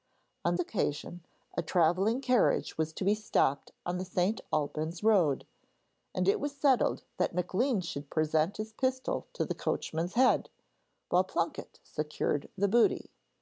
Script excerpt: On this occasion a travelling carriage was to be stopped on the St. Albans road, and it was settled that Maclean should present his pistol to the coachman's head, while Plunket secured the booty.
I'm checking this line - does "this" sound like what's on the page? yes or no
no